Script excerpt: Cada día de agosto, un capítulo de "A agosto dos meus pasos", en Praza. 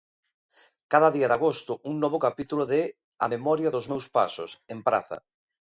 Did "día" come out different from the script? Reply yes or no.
no